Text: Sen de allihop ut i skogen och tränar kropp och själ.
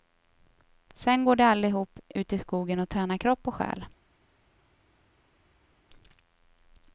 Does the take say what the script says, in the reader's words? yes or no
no